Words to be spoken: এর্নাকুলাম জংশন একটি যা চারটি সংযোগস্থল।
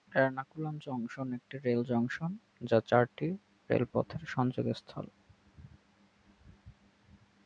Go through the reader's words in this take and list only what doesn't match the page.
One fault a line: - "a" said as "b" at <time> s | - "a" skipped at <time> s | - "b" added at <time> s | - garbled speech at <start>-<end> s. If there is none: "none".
- "রেল জংশন" added at 1.6 s
- "রেলপথের" added at 3.7 s